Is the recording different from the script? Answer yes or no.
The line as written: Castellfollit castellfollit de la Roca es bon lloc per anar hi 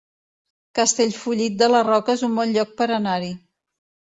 yes